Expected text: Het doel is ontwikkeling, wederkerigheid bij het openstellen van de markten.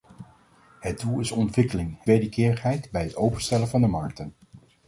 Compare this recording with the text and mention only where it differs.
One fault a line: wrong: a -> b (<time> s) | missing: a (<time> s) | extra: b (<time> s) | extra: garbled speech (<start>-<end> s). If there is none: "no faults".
no faults